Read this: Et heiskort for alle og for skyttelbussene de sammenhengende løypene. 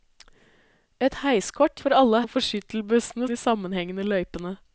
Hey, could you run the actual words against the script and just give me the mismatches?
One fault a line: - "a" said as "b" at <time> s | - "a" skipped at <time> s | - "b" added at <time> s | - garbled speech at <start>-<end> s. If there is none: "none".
none